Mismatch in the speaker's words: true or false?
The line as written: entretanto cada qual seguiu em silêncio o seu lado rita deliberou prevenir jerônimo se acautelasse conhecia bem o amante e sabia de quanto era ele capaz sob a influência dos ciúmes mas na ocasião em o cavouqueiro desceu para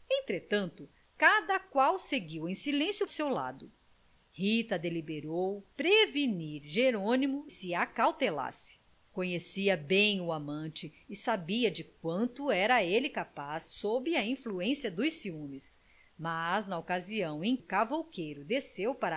false